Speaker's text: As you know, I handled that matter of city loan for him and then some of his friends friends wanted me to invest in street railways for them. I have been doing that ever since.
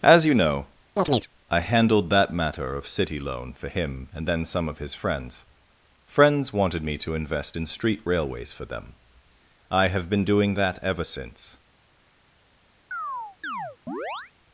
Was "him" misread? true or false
false